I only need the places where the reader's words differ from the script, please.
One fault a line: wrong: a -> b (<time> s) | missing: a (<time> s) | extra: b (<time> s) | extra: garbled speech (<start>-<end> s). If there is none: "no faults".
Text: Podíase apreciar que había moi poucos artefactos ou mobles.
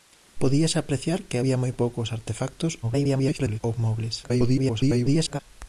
extra: garbled speech (2.8-3.6 s)
extra: garbled speech (4.2-5.4 s)